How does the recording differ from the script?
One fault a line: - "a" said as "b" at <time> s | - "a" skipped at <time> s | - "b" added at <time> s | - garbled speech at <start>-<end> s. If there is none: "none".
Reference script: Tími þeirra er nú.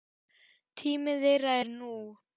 none